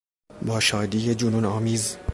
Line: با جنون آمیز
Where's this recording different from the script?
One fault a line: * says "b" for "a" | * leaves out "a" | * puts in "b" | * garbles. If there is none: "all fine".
* puts in "شادی"